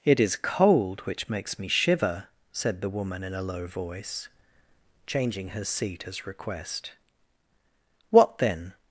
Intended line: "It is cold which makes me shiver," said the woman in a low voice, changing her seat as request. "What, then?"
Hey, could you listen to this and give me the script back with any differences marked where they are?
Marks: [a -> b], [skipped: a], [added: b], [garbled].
"It is cold which makes me shiver," said the woman in a low voice, changing her seat as request. "What, then?"